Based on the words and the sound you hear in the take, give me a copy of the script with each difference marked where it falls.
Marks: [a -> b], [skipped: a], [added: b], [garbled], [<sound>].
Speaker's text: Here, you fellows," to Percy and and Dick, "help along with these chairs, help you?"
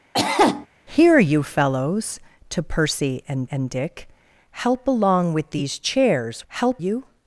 [cough] Here, you fellows," to Percy and and Dick, "help along with these chairs, help you?"